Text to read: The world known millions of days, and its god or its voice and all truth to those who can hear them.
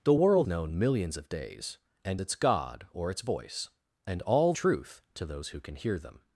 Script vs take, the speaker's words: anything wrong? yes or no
no